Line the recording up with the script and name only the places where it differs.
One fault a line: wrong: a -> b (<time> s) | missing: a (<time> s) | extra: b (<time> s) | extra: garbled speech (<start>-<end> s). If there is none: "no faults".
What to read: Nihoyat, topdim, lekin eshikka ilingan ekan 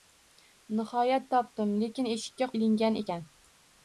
no faults